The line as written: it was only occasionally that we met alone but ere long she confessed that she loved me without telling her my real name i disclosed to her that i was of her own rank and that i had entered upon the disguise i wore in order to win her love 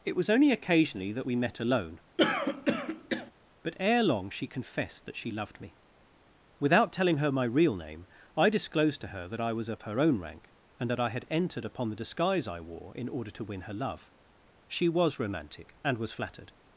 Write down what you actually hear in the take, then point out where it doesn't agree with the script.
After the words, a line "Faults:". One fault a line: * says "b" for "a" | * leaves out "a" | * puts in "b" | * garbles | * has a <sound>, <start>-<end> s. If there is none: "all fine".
it was only occasionally that we met alone but ere long she confessed that she loved me without telling her my real name i disclosed to her that i was of her own rank and that i had entered upon the disguise i wore in order to win her love she was romantic and was flattered
Faults:
* has a throat clearing, 2.2-3.3 s
* puts in "she was romantic and was flattered"